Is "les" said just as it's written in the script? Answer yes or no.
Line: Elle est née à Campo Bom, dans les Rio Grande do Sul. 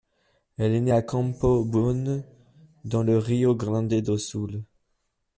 no